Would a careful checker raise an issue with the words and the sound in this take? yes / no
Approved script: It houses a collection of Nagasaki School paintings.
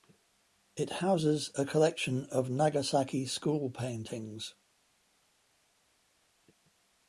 no